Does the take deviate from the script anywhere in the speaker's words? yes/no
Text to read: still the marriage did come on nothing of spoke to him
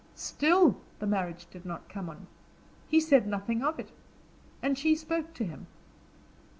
yes